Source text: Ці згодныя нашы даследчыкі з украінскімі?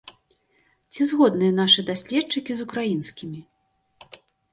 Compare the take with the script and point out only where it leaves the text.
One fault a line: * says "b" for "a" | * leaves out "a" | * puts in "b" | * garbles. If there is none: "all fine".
all fine